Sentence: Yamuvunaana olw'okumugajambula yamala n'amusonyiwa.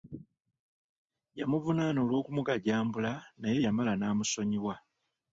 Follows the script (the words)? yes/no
no